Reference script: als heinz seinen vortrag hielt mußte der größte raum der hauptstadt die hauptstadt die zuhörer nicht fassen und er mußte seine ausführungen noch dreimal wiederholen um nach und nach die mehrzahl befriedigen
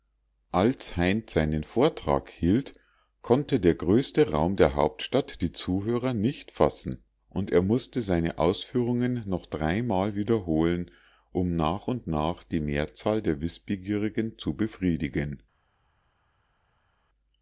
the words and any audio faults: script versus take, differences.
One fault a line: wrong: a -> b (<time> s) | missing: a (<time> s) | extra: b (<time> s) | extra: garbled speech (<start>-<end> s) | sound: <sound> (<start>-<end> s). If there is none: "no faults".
wrong: mußte -> konnte (3.2 s)
missing: hauptstadt die (5.5 s)
extra: der wißbegierigen zu (13.2 s)